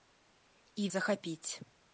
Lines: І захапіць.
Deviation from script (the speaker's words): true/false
false